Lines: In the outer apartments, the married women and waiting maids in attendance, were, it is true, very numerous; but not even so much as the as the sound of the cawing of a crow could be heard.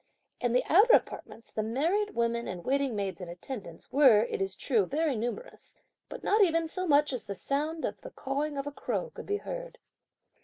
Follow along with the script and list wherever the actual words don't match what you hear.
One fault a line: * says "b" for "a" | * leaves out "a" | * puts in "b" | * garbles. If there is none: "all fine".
* leaves out "as the"